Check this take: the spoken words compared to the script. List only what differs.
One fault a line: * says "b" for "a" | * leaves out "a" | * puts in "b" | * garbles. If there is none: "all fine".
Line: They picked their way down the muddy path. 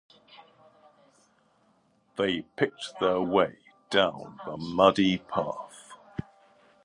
all fine